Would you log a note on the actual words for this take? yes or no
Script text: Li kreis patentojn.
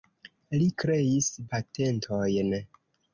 no